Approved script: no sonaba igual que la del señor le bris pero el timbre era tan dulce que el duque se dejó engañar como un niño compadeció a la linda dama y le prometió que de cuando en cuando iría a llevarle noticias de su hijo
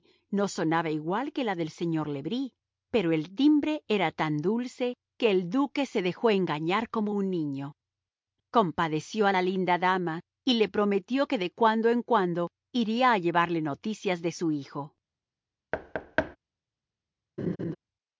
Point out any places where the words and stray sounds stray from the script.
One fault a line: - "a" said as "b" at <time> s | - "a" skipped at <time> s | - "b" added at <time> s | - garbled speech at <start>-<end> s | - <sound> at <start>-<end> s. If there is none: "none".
- thud at 15.7-16.4 s
- laugh at 17.4-17.8 s